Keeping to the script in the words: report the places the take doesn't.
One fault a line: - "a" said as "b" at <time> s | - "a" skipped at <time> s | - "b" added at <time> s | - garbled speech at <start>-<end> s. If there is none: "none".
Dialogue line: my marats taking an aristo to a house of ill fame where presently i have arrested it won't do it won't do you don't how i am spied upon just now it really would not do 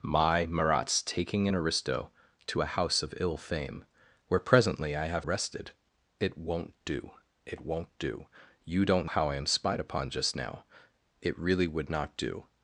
none